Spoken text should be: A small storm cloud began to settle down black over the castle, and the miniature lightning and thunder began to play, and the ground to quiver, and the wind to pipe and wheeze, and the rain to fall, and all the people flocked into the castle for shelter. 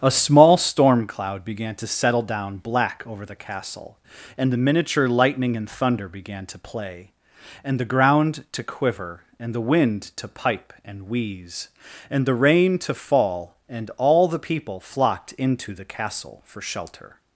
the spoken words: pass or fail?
pass